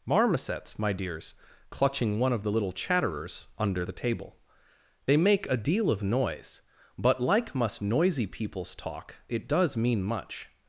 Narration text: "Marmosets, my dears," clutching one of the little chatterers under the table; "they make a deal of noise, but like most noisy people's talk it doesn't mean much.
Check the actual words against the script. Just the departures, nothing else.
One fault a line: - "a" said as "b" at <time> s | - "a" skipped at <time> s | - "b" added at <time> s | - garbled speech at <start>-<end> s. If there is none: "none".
- "most" said as "must" at 7.5 s
- "doesn't" said as "does" at 9.5 s